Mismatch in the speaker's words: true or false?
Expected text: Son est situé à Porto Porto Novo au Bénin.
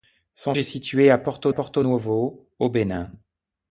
false